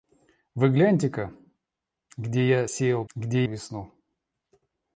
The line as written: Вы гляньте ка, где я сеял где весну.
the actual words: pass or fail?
pass